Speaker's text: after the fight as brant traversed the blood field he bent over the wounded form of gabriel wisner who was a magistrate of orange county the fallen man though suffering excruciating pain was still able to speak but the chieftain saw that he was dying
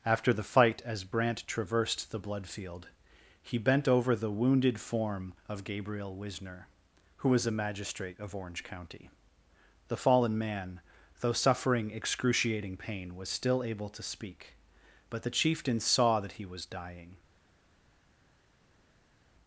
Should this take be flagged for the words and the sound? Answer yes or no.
no